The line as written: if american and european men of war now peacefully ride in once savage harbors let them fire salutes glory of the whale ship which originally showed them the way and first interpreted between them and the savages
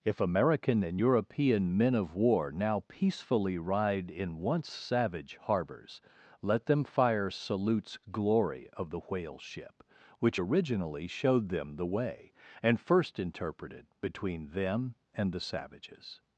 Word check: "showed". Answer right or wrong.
right